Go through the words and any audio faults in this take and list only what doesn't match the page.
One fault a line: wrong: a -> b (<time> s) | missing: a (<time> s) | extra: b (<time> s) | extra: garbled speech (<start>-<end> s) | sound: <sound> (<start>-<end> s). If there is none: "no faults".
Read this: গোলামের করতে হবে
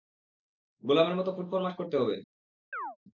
extra: মতো ফুটফরমাশ (1.1 s)
sound: chirp (2.7-3.0 s)